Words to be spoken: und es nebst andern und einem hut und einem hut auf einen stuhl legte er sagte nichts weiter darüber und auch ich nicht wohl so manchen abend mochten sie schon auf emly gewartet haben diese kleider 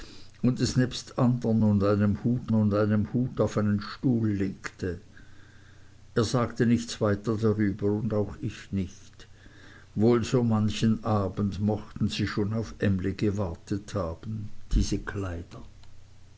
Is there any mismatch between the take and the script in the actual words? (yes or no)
no